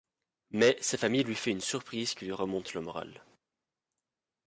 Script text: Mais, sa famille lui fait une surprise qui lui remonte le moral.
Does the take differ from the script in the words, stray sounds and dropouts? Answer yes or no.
no